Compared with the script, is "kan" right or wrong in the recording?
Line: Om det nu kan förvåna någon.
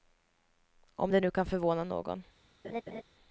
right